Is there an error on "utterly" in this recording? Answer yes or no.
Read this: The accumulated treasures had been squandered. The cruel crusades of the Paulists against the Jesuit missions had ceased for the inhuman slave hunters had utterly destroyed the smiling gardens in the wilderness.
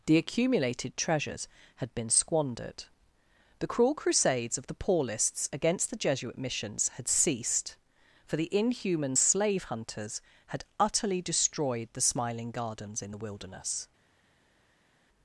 no